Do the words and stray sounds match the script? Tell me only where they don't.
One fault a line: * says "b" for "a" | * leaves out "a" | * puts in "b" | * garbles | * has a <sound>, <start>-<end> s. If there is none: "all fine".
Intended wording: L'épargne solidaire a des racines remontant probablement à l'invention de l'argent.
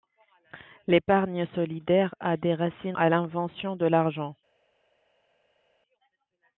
* leaves out "remontant probablement"